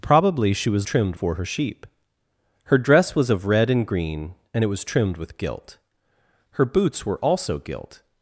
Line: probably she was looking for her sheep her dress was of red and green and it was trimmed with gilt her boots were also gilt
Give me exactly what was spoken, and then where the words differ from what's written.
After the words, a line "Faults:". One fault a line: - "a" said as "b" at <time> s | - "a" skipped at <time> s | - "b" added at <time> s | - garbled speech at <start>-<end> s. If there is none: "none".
probably she was trimmed for her sheep her dress was of red and green and it was trimmed with gilt her boots were also gilt
Faults:
- "looking" said as "trimmed" at 0.8 s